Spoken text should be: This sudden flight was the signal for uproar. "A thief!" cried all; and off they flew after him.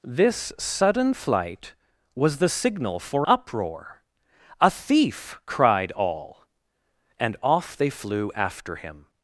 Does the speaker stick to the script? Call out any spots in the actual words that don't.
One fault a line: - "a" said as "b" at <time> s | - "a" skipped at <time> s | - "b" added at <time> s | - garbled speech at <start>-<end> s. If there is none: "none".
none